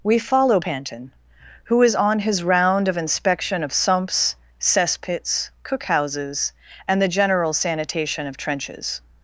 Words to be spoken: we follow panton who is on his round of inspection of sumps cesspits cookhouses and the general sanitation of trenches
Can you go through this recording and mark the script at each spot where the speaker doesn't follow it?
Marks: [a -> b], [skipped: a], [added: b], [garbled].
we follow panton who is on his round of inspection of sumps cesspits cookhouses and the general sanitation of trenches